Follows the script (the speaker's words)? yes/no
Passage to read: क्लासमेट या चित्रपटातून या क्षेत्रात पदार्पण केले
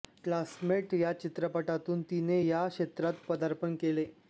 no